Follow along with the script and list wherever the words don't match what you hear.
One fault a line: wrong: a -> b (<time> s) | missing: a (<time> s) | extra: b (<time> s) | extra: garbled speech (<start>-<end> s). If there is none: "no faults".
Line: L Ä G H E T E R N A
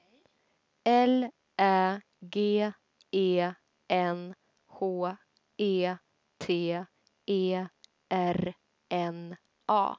extra: E N (3.1 s)